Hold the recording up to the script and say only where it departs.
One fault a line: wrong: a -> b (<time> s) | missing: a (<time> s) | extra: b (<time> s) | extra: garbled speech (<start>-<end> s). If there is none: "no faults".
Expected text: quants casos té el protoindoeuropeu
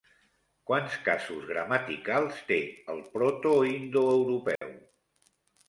extra: gramaticals (1.5 s)